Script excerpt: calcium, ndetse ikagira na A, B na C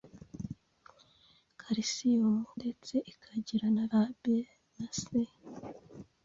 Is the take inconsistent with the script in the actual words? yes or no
no